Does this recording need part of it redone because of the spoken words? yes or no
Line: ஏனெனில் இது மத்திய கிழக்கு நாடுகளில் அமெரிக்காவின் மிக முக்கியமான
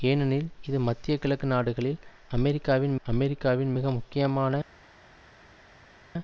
yes